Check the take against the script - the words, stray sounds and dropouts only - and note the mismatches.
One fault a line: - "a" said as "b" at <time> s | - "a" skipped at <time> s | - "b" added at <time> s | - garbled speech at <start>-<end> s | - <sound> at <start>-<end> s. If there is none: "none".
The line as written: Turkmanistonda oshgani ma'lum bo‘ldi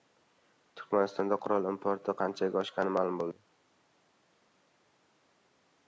- "qurol importi qanchaga" added at 1.4 s